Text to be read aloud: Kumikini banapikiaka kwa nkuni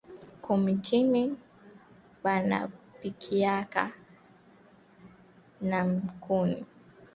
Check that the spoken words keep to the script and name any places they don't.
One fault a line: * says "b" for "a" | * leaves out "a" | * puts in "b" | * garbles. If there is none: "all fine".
* says "na" for "kwa"